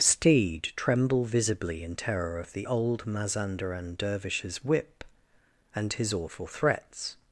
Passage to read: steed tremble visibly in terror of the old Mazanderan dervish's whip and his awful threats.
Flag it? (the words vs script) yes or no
no